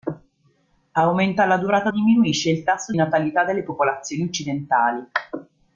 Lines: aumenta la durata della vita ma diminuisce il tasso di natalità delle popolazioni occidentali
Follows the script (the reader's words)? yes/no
no